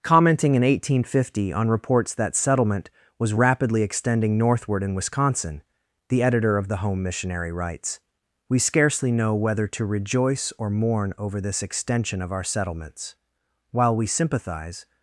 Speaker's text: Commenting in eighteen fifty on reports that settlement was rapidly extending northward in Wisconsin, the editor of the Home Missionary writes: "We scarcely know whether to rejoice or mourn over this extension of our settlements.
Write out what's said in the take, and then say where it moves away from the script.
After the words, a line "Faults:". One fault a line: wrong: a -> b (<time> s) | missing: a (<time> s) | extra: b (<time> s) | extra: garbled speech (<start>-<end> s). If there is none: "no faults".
Commenting in eighteen fifty on reports that settlement was rapidly extending northward in Wisconsin, the editor of the Home Missionary writes: "We scarcely know whether to rejoice or mourn over this extension of our settlements. While we sympathize
Faults:
extra: While we sympathize (13.7 s)